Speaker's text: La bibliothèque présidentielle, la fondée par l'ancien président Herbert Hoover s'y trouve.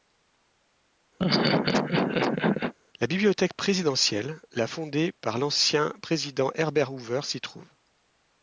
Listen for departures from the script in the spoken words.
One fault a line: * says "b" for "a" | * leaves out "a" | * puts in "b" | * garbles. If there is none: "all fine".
all fine